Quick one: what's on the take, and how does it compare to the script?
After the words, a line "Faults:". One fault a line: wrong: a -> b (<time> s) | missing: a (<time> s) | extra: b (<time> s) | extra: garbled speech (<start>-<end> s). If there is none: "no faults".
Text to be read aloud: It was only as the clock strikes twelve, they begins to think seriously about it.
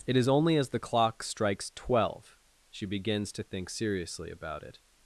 It is only as the clock strikes twelve, she begins to think seriously about it.
Faults:
wrong: was -> is (0.2 s)
wrong: they -> she (2.7 s)